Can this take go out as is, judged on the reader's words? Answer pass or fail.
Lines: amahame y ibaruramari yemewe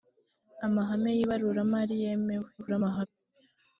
fail